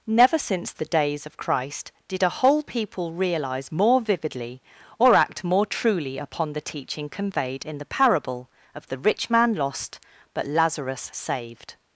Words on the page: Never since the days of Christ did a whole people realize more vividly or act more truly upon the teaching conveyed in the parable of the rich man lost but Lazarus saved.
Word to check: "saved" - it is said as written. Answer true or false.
true